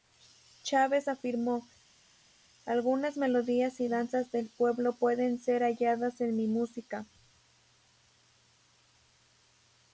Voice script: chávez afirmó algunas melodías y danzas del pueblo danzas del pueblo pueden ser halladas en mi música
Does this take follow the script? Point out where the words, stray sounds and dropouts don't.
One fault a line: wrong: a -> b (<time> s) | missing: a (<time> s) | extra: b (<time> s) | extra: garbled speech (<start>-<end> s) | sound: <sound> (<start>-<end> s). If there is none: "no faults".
missing: danzas del pueblo (4.9 s)